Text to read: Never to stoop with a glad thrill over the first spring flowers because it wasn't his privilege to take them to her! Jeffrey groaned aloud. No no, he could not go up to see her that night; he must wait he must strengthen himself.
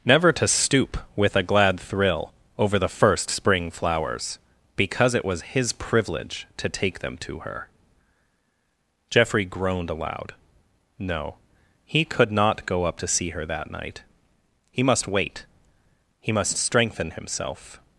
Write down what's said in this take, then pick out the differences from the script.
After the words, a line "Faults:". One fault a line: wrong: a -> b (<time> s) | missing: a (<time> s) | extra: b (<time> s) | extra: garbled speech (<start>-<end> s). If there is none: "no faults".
Never to stoop with a glad thrill over the first spring flowers because it was his privilege to take them to her! Jeffrey groaned aloud. No, he could not go up to see her that night; he must wait he must strengthen himself.
Faults:
wrong: wasn't -> was (5.2 s)
missing: no (11.3 s)